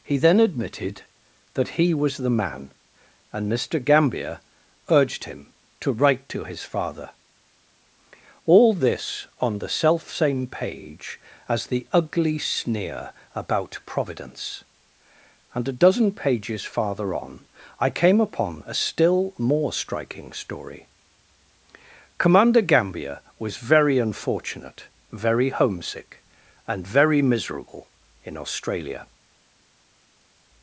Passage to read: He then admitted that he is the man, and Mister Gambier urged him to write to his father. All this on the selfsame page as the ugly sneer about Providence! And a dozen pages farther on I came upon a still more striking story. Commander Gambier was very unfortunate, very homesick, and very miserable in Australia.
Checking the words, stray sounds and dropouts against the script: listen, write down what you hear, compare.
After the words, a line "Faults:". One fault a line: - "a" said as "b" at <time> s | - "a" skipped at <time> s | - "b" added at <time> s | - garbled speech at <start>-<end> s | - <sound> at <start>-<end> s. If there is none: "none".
He then admitted that he was the man, and Mister Gambier urged him to write to his father. All this on the selfsame page as the ugly sneer about Providence! And a dozen pages farther on I came upon a still more striking story. Commander Gambier was very unfortunate, very homesick, and very miserable in Australia.
Faults:
- "is" said as "was" at 1.9 s